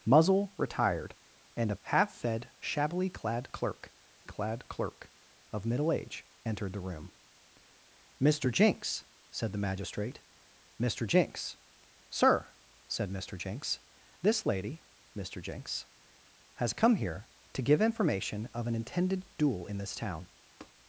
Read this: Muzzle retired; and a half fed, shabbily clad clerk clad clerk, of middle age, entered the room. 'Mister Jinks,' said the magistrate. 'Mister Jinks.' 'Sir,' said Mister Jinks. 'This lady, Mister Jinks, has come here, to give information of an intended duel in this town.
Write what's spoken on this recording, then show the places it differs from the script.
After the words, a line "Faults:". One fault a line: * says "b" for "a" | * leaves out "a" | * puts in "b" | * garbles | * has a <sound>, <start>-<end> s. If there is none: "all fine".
Muzzle retired; and a half fed, shabbily clad clerk clad clerk, of middle age, entered the room. 'Mister Jinks,' said the magistrate. 'Mister Jinks.' 'Sir,' said Mister Jinks. 'This lady, Mister Jinks, has come here, to give information of an intended duel in this town.
Faults:
* has a tap, 20.6-20.7 s